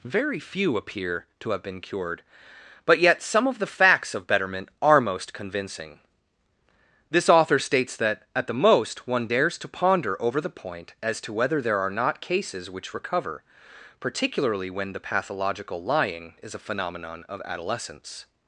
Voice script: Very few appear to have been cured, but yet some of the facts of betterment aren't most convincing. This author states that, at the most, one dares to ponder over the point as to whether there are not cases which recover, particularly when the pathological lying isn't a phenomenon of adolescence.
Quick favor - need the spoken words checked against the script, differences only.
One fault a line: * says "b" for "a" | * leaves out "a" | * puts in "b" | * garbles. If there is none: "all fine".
* says "are" for "aren't"
* says "is" for "isn't"